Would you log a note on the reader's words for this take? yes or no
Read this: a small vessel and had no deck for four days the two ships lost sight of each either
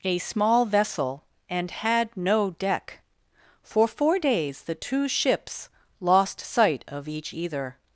no